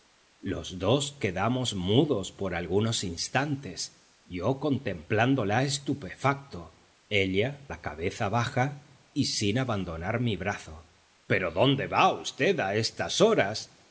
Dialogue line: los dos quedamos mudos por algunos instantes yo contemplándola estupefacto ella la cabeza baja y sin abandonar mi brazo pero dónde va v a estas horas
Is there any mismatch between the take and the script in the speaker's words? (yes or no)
no